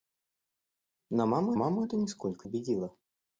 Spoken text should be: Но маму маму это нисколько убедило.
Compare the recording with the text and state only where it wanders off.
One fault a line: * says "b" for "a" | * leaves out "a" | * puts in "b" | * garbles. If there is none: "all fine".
all fine